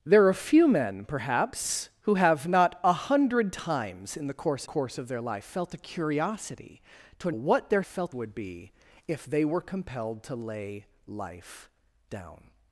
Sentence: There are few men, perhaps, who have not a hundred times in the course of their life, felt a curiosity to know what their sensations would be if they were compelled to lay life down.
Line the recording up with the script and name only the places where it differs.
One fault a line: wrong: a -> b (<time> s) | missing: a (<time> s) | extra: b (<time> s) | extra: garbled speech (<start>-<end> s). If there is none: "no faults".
extra: course (4.6 s)
missing: know (7.3 s)
wrong: sensations -> felt (7.8 s)